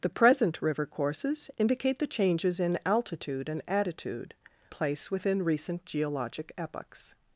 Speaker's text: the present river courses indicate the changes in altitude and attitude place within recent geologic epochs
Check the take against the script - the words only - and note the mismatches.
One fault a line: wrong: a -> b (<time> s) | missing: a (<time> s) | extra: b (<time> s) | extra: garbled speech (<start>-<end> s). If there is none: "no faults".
no faults